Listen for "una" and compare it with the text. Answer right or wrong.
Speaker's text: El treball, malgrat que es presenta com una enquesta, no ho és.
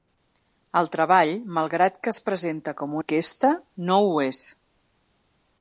wrong